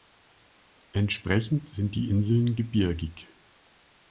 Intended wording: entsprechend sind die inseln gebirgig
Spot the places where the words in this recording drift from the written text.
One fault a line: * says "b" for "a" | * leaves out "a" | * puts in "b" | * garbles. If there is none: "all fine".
all fine